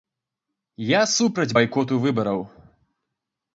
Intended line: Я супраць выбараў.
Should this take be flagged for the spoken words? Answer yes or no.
yes